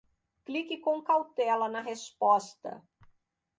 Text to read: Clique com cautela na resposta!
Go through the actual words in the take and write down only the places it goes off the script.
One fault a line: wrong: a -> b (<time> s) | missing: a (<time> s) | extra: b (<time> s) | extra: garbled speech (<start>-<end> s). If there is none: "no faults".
no faults